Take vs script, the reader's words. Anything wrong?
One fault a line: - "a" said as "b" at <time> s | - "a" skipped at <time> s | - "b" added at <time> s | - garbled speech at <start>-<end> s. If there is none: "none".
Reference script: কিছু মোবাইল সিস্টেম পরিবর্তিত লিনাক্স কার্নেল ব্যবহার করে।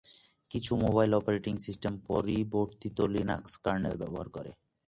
- "অপারেটিং" added at 1.1 s